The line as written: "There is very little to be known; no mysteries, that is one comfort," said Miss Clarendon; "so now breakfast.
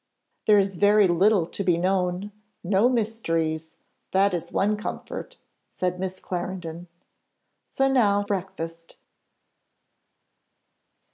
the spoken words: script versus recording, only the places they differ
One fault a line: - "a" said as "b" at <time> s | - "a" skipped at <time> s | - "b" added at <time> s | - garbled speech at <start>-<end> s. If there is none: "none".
none